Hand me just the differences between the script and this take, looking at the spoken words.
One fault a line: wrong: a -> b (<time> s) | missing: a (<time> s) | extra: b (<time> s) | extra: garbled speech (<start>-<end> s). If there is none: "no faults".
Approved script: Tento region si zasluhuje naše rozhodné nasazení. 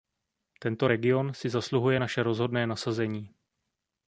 no faults